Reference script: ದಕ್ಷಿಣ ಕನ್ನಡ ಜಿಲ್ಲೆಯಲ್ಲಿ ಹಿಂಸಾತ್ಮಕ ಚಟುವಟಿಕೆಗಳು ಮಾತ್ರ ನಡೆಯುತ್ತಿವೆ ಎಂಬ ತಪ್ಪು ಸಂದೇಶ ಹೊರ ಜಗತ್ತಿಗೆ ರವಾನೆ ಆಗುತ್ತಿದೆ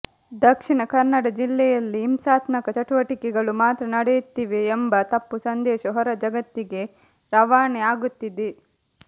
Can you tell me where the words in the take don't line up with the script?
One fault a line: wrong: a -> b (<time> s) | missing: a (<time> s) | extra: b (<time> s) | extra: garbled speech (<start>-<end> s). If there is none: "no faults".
no faults